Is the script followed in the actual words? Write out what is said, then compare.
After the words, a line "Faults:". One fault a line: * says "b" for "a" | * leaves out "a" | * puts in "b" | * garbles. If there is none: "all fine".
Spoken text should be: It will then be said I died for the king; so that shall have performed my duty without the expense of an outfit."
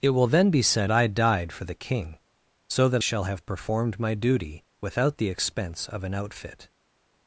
It will then be said I died for the king; so that shall have performed my duty without the expense of an outfit."
Faults:
all fine